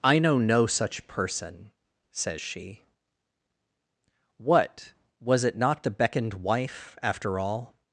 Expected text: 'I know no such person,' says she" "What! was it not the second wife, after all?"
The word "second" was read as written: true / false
false